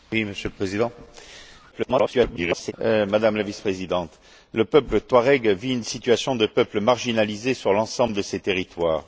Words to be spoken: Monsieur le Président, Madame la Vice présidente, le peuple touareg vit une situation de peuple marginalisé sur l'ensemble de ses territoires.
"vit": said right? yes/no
yes